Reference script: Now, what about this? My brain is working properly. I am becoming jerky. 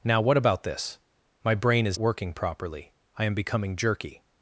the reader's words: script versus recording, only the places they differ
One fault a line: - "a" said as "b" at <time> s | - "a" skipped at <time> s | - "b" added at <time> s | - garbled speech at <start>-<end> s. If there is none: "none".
none